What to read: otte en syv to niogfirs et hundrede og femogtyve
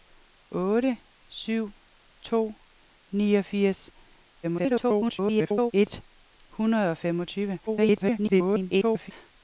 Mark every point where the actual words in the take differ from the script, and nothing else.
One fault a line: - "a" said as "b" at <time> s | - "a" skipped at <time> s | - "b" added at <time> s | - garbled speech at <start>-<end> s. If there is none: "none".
- "en" skipped at 1.0 s
- garbled speech at 4.4-5.7 s
- garbled speech at 7.7-9.1 s